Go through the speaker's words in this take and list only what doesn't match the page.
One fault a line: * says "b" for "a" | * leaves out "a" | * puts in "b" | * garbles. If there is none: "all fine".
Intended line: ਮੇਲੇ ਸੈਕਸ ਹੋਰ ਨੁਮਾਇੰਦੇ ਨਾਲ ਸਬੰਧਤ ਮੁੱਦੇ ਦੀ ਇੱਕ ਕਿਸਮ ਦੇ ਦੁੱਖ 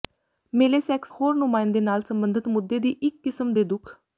all fine